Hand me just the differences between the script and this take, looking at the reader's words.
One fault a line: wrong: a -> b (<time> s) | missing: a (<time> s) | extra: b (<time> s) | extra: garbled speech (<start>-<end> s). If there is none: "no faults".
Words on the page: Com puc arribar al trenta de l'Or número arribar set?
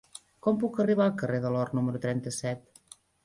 wrong: trenta -> carrer (1.2 s)
wrong: arribar -> trenta (2.1 s)